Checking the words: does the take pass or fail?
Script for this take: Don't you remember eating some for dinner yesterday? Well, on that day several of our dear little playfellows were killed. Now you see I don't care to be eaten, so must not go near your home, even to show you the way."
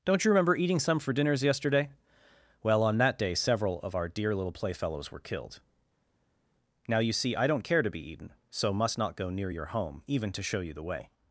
fail